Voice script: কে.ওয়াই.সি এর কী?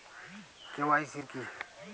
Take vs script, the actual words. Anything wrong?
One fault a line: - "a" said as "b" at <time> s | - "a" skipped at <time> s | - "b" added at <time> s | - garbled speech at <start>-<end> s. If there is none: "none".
none